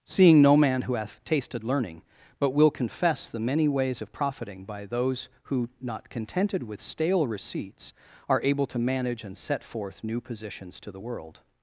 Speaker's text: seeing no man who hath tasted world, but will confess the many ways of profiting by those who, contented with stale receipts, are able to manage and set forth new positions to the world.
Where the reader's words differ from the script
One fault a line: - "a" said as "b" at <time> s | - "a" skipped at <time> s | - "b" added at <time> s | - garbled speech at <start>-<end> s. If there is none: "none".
- "world" said as "learning" at 1.6 s
- "not" added at 5.8 s